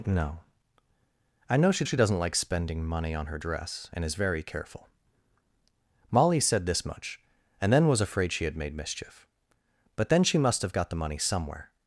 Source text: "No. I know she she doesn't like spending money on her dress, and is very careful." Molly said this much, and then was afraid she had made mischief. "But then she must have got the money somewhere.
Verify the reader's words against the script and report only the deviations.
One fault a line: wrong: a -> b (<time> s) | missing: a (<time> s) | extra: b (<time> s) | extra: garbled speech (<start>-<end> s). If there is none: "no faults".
no faults